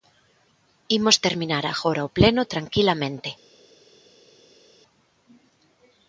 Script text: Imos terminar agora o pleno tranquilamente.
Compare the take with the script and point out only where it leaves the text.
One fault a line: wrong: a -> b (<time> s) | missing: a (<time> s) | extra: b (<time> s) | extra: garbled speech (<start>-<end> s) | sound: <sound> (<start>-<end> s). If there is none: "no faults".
no faults